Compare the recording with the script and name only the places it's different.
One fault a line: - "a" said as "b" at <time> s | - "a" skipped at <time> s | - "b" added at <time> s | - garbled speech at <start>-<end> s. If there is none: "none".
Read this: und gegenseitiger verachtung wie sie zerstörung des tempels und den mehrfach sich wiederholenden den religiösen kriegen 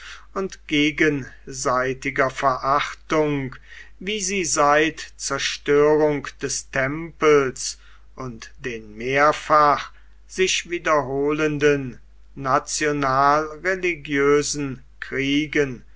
- "seit" added at 4.5 s
- "den" said as "national" at 12.3 s